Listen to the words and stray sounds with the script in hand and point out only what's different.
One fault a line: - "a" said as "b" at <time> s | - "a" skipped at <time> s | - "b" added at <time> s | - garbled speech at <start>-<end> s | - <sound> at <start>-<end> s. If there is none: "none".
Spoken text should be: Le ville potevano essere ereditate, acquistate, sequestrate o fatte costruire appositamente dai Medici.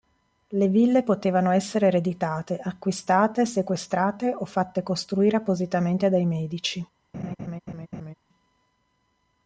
- laugh at 7.1-8.1 s